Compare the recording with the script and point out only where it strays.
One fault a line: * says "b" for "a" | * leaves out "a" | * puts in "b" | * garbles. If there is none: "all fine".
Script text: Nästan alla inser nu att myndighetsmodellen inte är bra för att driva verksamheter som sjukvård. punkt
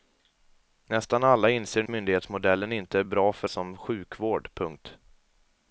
* leaves out "nu att"
* leaves out "att driva verksamheter"